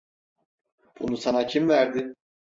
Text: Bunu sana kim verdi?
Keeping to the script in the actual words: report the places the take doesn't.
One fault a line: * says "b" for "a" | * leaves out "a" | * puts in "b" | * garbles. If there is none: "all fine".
all fine